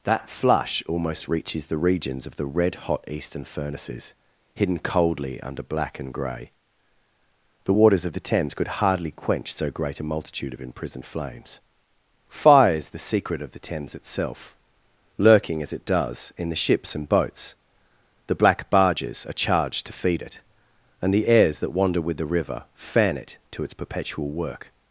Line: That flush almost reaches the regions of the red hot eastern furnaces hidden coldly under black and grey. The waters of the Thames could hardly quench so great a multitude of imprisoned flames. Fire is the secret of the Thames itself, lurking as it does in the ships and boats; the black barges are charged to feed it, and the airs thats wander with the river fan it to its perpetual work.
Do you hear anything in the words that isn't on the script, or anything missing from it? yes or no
yes